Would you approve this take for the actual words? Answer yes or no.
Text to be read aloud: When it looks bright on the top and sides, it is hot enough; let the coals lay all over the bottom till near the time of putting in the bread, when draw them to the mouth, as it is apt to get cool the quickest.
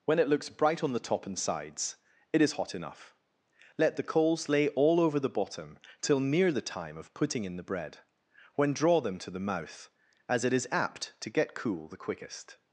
yes